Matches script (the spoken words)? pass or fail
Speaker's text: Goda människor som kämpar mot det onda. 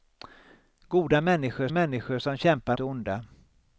fail